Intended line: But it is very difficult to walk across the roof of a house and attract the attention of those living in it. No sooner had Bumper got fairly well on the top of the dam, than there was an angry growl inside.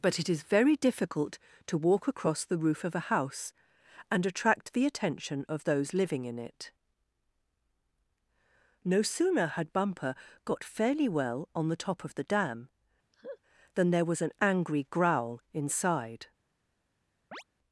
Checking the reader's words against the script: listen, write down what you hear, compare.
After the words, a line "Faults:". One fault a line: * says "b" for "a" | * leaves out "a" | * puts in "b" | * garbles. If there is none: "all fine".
But it is very difficult to walk across the roof of a house and attract the attention of those living in it. No sooner had Bumper got fairly well on the top of the dam, than there was an angry growl inside.
Faults:
all fine